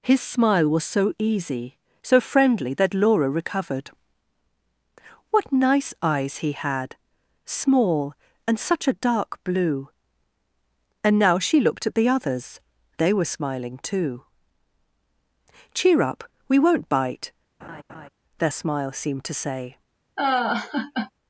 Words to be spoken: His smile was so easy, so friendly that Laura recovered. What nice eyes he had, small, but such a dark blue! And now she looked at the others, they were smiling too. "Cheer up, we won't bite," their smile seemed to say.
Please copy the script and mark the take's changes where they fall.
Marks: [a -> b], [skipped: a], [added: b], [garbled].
His smile was so easy, so friendly that Laura recovered. What nice eyes he had, small, [but -> and] such a dark blue! And now she looked at the others, they were smiling too. "Cheer up, we won't bite," their smile seemed to say.